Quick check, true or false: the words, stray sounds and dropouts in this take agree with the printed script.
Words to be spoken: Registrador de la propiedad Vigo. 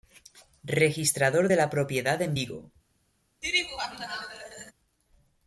false